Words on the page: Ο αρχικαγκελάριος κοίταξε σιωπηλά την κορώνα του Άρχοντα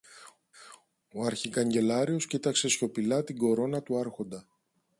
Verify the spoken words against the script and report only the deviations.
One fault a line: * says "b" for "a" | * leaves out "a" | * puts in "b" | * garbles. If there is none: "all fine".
all fine